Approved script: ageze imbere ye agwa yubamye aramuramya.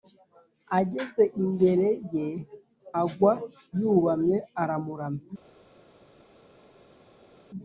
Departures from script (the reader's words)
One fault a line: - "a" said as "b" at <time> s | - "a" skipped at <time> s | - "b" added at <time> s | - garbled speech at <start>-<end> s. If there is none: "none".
none